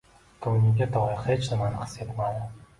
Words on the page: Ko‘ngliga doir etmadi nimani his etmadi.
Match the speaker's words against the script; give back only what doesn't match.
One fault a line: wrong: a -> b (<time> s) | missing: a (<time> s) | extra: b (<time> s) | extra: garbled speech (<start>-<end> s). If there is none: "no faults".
wrong: etmadi -> hech (1.3 s)